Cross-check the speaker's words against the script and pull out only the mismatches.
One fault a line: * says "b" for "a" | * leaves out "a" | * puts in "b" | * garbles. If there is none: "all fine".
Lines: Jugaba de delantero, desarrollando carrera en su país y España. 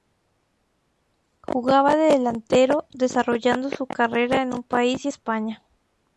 * puts in "su"